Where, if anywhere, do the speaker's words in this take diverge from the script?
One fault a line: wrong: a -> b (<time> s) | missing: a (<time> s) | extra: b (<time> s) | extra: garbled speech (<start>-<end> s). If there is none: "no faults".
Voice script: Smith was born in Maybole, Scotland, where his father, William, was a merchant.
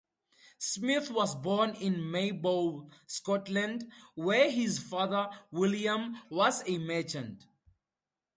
no faults